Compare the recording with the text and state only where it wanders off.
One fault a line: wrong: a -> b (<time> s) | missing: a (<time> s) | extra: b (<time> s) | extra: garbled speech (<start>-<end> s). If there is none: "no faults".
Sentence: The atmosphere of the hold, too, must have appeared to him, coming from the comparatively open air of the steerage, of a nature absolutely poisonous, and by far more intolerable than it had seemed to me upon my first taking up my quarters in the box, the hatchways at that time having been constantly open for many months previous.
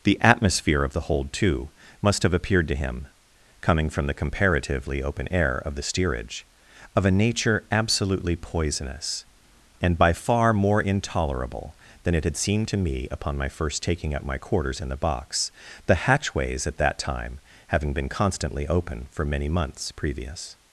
no faults